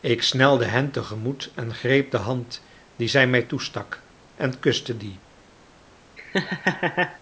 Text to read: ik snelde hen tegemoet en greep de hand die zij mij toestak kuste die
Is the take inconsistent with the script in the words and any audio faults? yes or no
yes